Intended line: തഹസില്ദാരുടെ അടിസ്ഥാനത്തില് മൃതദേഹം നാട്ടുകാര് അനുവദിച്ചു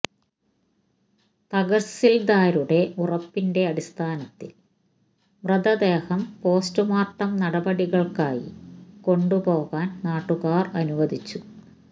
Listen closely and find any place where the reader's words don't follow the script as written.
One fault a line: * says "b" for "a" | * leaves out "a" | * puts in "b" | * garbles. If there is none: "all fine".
* puts in "ഉറപ്പിന്റെ"
* puts in "പോസ്റ്റ്മോര്ട്ടം നടപടികള്ക്കായി കൊണ്ടുപോകാന്"